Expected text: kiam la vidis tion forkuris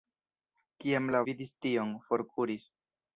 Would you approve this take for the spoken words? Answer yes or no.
yes